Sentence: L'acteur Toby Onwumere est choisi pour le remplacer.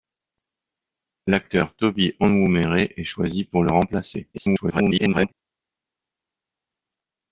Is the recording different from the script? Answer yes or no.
yes